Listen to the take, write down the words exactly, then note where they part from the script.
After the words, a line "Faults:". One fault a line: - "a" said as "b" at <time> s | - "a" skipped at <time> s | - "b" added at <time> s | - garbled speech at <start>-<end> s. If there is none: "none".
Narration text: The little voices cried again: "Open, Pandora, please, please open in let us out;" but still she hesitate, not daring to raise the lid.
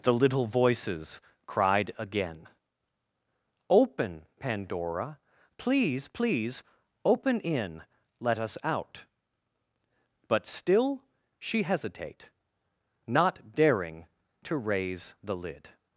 The little voices cried again: "Open, Pandora, please, please open in let us out;" but still she hesitate, not daring to raise the lid.
Faults:
none